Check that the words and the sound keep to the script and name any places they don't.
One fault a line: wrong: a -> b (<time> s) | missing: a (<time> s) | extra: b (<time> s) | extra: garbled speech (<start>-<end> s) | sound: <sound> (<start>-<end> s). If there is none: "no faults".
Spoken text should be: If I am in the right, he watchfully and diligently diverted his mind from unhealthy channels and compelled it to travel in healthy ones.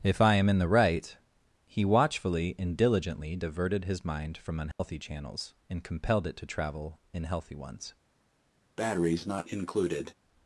sound: dropout (4.7-4.8 s)
sound: breath (8.8-10.1 s)